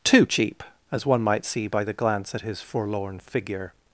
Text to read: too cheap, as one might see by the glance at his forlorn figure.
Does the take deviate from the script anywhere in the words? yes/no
no